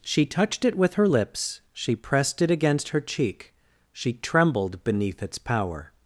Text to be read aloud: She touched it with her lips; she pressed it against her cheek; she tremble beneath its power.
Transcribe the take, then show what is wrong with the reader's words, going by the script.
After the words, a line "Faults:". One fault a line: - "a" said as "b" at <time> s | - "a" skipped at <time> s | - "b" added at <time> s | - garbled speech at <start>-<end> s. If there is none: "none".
She touched it with her lips; she pressed it against her cheek; she trembled beneath its power.
Faults:
- "tremble" said as "trembled" at 4.1 s